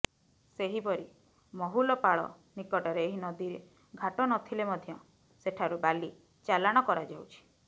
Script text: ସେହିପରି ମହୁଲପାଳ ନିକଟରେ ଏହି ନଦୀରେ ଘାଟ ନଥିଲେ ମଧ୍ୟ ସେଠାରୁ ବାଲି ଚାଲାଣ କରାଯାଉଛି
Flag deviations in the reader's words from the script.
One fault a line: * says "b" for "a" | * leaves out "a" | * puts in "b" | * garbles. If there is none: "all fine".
all fine